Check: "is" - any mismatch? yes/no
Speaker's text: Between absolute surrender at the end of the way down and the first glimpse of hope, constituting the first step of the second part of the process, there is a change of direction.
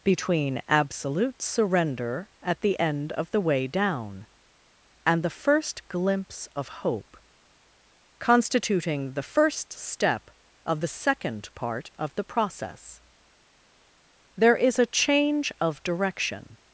no